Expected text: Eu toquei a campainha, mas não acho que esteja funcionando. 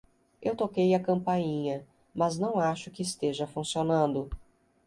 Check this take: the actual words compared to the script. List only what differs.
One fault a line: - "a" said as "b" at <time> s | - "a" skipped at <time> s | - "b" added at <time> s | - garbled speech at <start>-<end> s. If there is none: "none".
none